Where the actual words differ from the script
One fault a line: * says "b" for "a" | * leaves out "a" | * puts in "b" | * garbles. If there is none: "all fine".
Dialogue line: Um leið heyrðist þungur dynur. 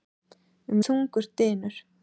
* leaves out "leið heyrðist"